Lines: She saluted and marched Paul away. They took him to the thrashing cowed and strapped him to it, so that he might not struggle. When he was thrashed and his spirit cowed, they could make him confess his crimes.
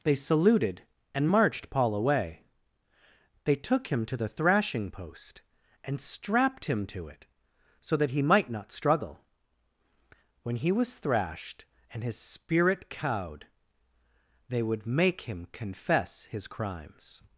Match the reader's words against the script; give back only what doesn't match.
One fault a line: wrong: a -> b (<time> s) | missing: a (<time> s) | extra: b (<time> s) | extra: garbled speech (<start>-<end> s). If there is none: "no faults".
wrong: She -> They (0.0 s)
wrong: cowed -> post (4.9 s)
wrong: could -> would (14.6 s)